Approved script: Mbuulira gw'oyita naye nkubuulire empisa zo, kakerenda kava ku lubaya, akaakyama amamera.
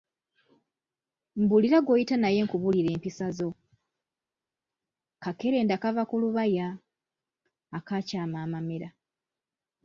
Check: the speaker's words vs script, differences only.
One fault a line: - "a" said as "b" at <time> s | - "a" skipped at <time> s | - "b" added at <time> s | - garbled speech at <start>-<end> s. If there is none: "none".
none